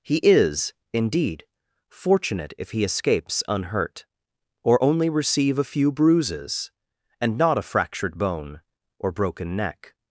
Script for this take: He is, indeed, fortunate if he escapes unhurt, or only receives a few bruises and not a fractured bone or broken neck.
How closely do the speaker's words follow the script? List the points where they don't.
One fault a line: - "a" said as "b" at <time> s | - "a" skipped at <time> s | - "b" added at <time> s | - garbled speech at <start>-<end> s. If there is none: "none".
- "receives" said as "receive" at 5.1 s